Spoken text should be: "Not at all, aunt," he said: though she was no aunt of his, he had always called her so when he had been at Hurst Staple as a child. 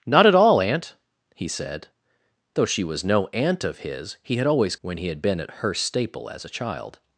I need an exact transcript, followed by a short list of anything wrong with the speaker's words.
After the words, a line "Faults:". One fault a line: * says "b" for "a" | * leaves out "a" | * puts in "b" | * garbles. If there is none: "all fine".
"Not at all, aunt," he said: though she was no aunt of his, he had always when he had been at Hurst Staple as a child.
Faults:
* leaves out "called her so"